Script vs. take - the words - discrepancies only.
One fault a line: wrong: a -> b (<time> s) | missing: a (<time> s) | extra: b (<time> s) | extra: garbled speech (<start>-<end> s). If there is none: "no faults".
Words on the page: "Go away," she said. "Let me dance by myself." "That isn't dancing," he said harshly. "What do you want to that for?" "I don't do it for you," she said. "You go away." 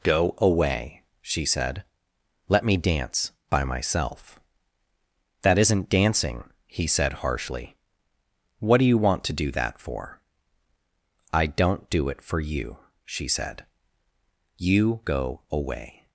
extra: do (9.3 s)